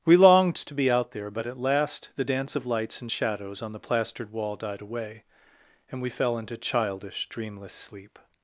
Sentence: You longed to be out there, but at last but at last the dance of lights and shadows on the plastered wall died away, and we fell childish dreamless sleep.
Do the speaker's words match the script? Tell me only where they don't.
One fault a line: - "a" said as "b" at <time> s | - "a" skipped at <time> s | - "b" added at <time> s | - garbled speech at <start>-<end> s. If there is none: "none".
- "You" said as "We" at 0.0 s
- "but at last" skipped at 2.1 s
- "into" added at 6.4 s